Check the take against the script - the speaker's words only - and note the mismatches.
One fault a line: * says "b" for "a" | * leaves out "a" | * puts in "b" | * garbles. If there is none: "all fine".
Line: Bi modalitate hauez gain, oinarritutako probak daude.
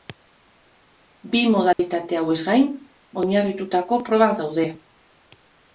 all fine